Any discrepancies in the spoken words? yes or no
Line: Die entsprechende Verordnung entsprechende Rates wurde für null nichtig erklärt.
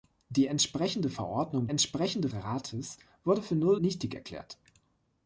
no